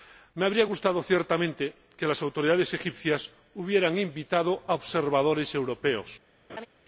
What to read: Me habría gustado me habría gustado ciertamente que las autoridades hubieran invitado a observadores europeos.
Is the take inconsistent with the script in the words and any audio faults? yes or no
yes